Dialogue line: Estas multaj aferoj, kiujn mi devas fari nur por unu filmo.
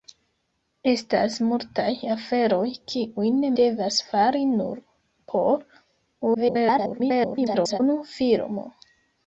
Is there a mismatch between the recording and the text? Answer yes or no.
yes